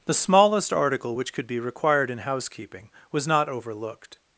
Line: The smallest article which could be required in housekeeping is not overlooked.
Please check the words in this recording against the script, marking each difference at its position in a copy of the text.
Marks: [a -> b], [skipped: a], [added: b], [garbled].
The smallest article which could be required in housekeeping [is -> was] not overlooked.